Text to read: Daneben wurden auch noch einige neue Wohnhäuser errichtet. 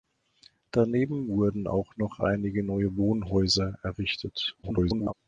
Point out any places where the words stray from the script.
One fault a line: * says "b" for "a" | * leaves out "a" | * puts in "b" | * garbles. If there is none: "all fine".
* garbles